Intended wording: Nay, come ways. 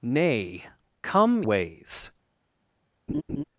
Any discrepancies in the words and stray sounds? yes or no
yes